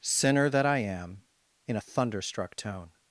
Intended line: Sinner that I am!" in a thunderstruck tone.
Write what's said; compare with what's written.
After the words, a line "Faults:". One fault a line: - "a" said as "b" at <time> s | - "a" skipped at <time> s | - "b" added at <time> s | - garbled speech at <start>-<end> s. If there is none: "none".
Sinner that I am!" in a thunderstruck tone.
Faults:
none